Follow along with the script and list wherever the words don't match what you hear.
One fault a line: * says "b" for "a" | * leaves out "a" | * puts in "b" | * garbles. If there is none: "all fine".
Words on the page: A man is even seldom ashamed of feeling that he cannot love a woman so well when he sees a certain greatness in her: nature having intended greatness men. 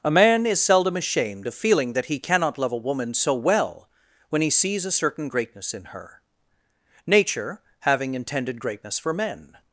* leaves out "even"
* puts in "for"